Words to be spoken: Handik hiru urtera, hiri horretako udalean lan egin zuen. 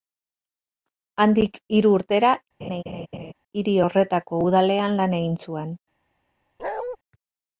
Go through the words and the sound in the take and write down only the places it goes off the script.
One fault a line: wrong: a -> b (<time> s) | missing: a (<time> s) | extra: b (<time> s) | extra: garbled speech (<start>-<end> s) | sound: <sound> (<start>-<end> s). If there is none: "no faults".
sound: laugh (2.6-3.3 s)
sound: bark (6.6-7.0 s)